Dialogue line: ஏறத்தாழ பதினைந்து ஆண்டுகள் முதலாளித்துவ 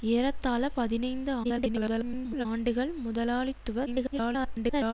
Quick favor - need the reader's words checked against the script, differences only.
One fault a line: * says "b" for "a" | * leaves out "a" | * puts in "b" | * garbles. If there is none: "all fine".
* garbles
* garbles